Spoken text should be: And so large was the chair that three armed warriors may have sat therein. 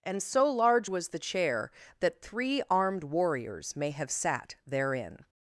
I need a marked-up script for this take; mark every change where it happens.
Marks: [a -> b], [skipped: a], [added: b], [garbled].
And so large was the chair that three armed warriors may have sat therein.